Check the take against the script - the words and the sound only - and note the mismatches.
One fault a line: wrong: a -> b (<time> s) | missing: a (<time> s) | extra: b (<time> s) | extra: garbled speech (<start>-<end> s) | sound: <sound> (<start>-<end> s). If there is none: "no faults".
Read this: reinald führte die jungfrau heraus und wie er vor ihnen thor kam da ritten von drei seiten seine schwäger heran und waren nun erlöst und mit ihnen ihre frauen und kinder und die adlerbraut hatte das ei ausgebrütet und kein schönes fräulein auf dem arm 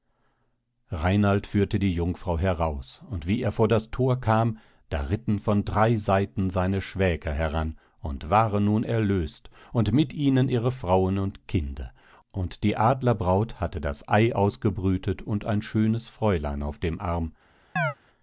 wrong: ihnen -> das (3.7 s)
wrong: kein -> ein (15.4 s)
sound: chirp (17.8-17.9 s)